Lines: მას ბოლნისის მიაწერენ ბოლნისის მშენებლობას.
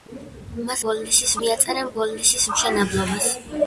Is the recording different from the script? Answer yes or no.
no